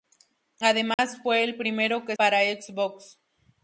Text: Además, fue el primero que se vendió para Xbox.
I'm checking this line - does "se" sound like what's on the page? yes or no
no